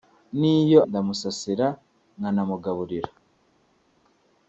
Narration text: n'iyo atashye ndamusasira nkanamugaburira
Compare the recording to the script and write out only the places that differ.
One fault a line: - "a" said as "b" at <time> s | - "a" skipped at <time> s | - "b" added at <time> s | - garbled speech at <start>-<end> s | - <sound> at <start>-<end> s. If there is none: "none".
- "atashye" skipped at 0.8 s